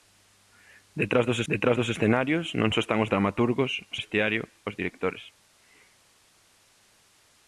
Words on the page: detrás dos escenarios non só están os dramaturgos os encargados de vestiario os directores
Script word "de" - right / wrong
wrong